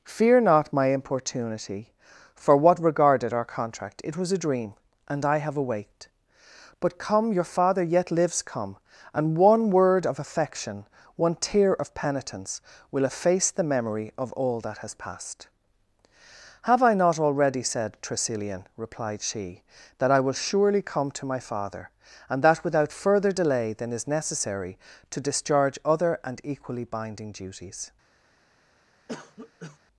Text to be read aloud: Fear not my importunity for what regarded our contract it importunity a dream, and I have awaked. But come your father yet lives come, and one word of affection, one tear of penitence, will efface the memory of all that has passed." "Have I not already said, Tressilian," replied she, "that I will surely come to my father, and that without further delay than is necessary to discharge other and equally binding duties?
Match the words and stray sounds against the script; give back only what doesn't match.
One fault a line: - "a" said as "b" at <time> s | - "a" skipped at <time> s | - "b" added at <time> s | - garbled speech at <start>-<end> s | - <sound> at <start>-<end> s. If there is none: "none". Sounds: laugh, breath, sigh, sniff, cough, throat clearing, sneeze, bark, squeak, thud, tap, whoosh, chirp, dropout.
- "importunity" said as "was" at 4.2 s
- cough at 29.1-29.8 s